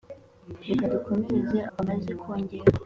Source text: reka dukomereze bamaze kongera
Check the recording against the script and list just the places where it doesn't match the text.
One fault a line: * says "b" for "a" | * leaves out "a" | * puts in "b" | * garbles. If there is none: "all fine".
all fine